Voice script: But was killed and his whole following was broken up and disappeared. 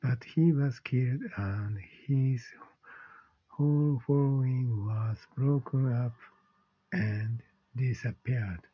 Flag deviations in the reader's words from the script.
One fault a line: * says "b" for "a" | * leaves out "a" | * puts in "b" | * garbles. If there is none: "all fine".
* puts in "he"